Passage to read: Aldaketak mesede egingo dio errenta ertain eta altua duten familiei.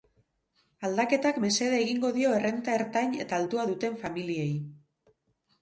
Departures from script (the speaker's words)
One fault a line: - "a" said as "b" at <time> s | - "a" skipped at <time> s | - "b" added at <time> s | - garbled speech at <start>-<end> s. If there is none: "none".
none